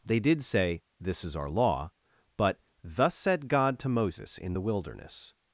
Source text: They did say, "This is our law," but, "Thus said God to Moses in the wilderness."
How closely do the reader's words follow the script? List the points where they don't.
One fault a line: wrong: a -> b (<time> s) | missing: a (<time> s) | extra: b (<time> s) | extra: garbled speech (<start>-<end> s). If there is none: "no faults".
no faults